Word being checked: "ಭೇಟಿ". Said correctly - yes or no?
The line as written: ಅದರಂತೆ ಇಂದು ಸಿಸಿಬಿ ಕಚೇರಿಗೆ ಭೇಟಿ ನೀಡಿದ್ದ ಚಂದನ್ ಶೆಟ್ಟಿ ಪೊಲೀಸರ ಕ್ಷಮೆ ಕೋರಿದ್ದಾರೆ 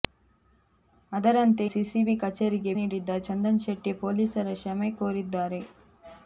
no